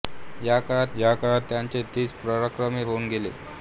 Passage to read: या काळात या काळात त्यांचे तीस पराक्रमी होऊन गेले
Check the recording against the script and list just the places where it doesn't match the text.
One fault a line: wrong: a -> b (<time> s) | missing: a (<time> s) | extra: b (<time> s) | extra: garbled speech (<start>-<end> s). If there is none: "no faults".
no faults